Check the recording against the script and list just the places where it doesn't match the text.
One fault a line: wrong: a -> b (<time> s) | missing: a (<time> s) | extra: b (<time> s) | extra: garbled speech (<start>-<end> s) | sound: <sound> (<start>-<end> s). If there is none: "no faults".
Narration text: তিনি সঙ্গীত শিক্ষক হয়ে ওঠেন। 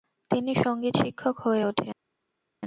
no faults